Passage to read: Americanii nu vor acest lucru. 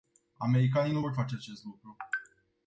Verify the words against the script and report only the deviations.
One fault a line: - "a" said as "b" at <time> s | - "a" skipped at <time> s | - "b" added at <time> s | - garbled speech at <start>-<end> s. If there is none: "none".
- "face" added at 1.1 s